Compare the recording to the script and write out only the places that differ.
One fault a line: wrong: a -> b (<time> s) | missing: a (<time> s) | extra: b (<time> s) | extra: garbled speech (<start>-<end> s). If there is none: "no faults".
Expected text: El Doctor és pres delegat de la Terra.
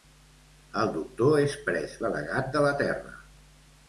no faults